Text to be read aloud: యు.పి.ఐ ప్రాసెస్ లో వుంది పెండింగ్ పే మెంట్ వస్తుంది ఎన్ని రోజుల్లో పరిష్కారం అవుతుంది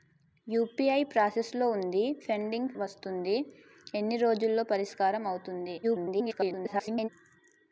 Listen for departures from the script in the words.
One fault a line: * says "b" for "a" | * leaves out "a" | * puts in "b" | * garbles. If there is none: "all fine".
* leaves out "పే మెంట్"
* garbles